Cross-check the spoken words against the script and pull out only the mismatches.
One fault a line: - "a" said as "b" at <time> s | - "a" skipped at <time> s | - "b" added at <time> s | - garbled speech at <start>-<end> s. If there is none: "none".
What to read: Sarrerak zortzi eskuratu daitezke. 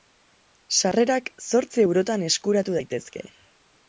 - "eurotan" added at 1.8 s